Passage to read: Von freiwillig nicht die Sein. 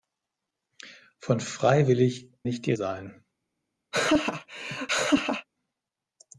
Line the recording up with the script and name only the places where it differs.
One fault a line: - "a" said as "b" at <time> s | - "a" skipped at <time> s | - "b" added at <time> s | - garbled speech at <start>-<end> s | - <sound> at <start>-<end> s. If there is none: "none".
- laugh at 3.9-5.5 s